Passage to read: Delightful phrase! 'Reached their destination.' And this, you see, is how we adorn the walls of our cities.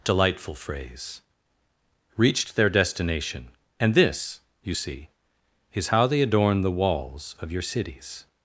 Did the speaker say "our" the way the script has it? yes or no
no